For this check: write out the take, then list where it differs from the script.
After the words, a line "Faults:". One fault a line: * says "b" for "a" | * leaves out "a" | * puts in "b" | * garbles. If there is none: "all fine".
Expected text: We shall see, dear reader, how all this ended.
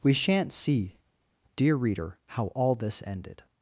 We shan't see, dear reader, how all this ended.
Faults:
* says "shan't" for "shall"